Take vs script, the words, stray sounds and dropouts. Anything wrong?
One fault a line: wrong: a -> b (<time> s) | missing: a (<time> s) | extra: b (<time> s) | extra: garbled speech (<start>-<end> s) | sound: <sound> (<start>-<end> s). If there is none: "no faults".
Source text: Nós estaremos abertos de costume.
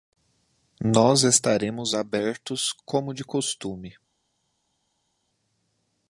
extra: como (2.8 s)